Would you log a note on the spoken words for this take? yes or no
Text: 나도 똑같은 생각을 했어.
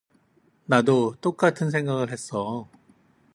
no